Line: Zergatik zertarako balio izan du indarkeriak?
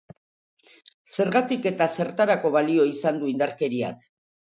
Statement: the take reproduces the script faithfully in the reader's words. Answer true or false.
false